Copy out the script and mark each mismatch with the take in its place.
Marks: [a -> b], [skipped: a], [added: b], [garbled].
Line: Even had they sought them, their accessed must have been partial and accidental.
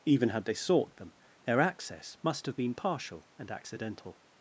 Even had they sought them, their [accessed -> access] must have been partial and accidental.